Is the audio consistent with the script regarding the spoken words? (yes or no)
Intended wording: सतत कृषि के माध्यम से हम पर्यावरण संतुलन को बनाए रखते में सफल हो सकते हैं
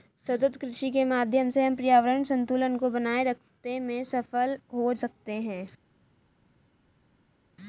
yes